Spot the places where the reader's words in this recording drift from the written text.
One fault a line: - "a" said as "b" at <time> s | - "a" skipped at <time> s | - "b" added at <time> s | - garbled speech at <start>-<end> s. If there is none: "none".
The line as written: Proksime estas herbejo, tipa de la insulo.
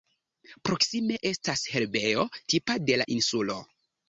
none